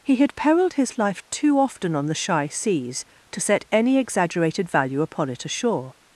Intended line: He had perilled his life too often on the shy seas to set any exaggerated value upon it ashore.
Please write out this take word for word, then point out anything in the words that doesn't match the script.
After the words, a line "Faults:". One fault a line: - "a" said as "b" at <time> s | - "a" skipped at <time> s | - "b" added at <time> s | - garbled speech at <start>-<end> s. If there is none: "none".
He had perilled his life too often on the shy seas to set any exaggerated value upon it ashore.
Faults:
none